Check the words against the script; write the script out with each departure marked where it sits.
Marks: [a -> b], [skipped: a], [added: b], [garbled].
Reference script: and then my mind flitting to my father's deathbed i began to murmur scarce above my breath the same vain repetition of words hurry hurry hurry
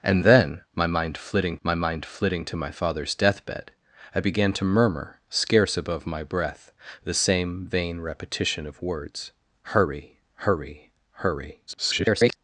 and then my mind flitting [added: my mind flitting] to my father's deathbed i began to murmur scarce above my breath the same vain repetition of words hurry hurry hurry [garbled]